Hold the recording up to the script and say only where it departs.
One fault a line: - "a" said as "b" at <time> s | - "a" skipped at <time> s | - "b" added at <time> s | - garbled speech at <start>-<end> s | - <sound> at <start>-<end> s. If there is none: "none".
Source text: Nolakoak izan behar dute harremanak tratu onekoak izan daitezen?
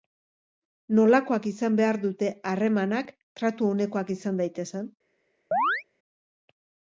- chirp at 5.5-5.8 s